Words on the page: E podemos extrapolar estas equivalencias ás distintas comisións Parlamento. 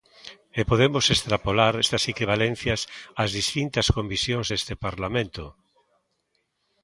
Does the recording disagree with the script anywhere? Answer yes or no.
yes